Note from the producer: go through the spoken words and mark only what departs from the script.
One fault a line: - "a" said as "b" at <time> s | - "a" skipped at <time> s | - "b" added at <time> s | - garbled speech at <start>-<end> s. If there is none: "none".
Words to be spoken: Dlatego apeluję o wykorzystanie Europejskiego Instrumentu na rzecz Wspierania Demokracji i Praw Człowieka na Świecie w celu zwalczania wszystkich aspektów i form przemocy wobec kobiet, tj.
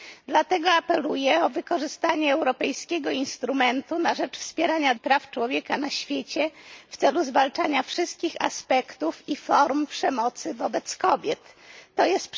- "Demokracji" skipped at 5.0 s